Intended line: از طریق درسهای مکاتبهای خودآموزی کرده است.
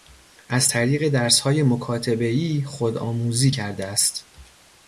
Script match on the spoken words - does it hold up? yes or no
yes